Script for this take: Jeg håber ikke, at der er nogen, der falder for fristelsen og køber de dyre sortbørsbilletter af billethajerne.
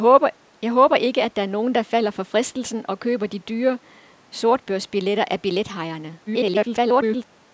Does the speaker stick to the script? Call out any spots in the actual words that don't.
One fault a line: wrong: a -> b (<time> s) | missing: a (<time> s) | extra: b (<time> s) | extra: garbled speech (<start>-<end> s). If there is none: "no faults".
extra: garbled speech (6.3-7.2 s)